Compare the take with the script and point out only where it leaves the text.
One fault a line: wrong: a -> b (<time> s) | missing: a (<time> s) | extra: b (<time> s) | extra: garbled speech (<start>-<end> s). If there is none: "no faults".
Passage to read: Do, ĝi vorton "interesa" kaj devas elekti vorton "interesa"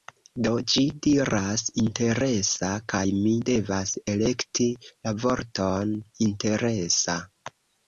wrong: vorton -> diras (1.1 s)
extra: mi (3.2 s)
extra: la (4.9 s)